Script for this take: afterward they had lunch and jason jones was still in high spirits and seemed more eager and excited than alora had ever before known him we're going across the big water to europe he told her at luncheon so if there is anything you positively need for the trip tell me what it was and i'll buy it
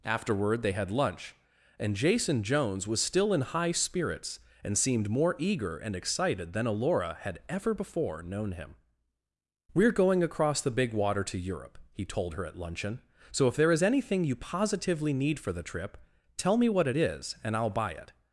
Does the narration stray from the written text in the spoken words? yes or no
yes